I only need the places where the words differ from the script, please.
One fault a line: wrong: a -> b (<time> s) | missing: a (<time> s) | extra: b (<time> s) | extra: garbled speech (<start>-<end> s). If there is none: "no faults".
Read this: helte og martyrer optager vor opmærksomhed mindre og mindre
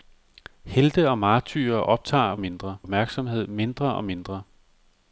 wrong: vor -> mindre (2.4 s)